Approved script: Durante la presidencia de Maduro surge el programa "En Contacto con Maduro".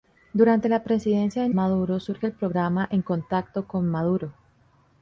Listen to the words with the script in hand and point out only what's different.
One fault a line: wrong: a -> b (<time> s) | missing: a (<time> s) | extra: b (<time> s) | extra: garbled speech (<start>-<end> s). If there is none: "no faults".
no faults